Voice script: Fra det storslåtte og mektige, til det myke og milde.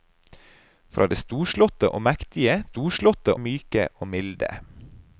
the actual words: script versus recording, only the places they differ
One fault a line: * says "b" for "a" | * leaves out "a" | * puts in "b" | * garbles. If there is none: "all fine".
* says "storslåtte" for "til"